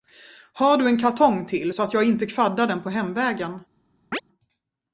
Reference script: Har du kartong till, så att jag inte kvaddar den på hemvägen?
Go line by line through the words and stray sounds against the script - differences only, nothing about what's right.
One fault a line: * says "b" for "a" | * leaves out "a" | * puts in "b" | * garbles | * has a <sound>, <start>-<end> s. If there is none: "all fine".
* puts in "en"
* has a chirp, 4.1-4.2 s